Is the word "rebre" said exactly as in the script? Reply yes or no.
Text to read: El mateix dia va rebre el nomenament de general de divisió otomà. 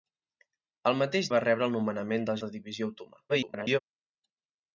yes